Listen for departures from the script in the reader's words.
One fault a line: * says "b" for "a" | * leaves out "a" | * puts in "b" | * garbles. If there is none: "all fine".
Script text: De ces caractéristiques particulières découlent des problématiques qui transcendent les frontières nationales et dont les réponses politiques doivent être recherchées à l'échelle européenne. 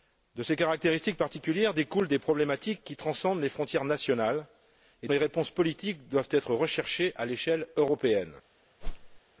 * leaves out "dont"